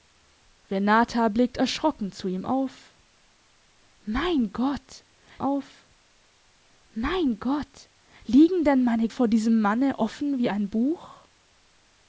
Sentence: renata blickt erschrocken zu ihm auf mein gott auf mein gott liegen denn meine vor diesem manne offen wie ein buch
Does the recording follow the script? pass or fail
pass